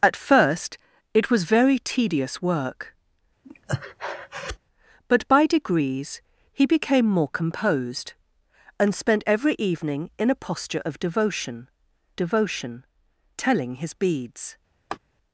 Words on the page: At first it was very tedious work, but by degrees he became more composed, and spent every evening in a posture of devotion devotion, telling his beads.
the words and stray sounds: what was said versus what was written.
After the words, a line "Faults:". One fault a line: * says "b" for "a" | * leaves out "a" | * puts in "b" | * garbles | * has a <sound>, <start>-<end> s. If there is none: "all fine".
At first it was very tedious work, but by degrees he became more composed, and spent every evening in a posture of devotion devotion, telling his beads.
Faults:
* has a breath, 3.4-4.6 s
* has a laugh, 14.9-15.0 s